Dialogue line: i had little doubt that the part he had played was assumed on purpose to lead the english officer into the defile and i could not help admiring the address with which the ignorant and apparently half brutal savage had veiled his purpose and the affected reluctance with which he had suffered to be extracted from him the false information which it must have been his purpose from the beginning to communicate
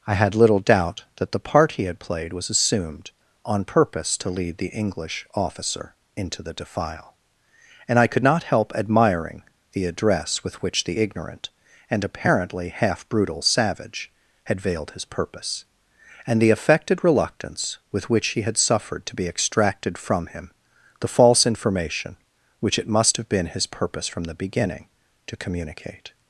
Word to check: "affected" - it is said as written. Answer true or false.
true